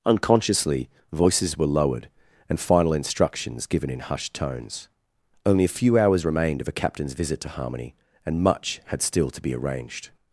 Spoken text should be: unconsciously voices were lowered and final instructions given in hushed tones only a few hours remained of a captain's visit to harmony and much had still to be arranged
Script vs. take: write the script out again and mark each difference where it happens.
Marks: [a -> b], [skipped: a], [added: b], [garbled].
unconsciously voices were lowered and final instructions given in hushed tones only a few hours remained of a captain's visit to harmony and much had still to be arranged